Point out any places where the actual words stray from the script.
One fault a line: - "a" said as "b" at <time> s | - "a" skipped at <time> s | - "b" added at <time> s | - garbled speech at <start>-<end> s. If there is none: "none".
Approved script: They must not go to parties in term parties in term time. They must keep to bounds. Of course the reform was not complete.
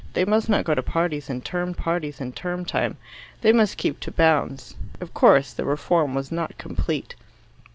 none